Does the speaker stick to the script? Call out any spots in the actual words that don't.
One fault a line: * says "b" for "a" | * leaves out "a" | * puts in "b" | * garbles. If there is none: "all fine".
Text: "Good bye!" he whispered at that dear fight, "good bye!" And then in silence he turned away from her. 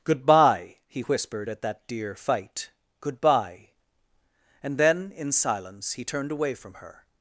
all fine